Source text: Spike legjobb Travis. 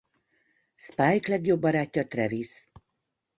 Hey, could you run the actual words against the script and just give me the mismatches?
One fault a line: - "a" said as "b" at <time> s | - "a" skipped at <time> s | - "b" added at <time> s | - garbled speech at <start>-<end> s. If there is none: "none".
- "barátja" added at 1.6 s